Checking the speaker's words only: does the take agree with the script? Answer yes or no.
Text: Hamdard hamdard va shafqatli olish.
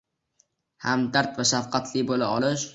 no